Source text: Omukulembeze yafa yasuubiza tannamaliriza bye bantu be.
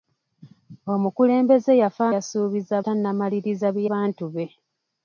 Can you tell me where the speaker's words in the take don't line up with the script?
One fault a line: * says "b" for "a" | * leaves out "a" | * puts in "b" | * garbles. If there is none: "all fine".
all fine